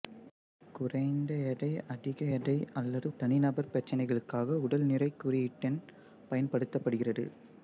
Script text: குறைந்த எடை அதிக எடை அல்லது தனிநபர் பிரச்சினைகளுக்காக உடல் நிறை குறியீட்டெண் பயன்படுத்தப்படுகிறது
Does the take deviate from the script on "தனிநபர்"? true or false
false